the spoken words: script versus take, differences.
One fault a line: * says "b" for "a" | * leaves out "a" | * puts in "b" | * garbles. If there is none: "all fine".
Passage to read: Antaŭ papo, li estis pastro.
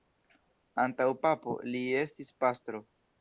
all fine